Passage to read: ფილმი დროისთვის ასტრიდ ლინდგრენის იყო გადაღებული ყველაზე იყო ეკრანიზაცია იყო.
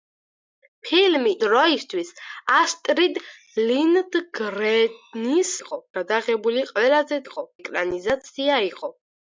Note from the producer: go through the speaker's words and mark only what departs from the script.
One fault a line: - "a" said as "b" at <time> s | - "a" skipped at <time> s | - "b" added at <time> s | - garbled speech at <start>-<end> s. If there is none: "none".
none